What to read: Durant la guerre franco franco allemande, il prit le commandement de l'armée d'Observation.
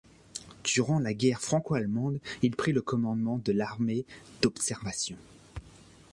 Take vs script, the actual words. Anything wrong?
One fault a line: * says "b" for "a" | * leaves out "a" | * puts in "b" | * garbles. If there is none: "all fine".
* leaves out "franco"